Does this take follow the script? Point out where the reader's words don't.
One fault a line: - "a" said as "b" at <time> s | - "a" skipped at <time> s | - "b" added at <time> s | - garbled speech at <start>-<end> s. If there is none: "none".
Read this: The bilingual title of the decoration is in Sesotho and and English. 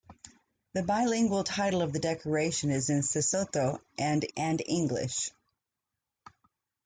none